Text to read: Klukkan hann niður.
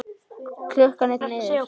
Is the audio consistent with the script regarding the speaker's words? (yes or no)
yes